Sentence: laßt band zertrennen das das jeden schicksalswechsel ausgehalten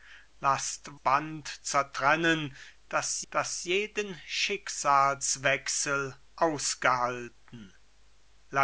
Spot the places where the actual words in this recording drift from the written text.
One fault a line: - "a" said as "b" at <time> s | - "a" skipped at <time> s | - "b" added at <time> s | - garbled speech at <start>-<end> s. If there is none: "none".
none